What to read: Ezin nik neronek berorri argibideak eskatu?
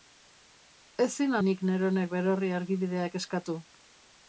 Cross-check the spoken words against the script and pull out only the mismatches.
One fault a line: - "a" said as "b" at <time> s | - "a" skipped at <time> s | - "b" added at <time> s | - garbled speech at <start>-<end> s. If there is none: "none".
none